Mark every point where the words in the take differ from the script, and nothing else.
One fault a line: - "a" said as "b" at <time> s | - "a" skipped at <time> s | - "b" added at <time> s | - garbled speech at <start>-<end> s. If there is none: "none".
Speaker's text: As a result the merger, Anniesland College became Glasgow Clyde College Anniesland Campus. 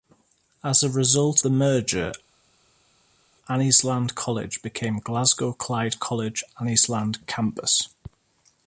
none